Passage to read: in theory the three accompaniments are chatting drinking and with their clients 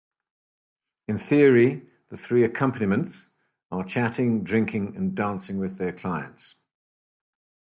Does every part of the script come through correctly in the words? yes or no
no